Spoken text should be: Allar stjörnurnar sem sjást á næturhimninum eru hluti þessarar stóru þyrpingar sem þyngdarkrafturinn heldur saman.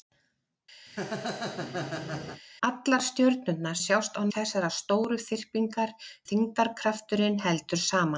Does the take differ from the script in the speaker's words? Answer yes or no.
yes